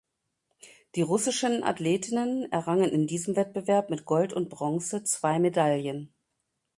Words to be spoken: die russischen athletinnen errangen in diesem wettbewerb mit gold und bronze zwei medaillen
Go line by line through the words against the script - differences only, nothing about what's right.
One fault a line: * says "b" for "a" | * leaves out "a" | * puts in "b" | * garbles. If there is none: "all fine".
all fine